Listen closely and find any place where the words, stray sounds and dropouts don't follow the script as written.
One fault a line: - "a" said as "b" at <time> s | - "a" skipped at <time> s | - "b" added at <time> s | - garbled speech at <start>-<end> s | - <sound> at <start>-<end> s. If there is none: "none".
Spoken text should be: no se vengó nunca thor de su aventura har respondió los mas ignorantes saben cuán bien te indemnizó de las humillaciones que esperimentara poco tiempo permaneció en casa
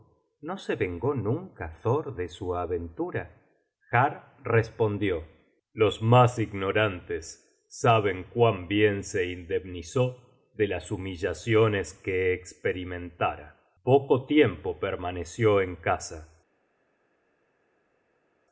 - "te" said as "se" at 9.0 s